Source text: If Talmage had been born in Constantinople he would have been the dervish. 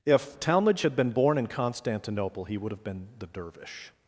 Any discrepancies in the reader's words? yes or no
no